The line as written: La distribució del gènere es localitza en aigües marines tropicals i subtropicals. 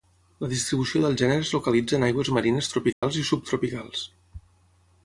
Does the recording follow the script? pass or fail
pass